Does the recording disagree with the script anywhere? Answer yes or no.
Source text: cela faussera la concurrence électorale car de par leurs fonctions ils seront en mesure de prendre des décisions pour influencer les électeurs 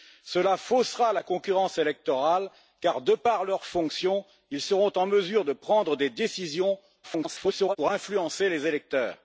yes